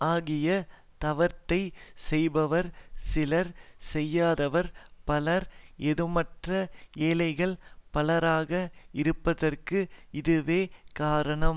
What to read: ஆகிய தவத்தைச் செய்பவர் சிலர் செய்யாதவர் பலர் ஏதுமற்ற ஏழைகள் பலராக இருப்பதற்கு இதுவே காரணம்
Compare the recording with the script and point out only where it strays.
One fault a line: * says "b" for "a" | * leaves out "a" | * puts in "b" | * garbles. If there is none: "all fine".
all fine